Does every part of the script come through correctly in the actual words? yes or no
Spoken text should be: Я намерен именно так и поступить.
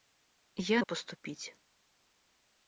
no